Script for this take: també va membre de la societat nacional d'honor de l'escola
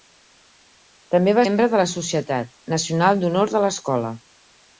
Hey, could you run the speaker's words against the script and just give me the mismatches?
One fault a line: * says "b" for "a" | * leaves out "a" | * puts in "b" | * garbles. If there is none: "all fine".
all fine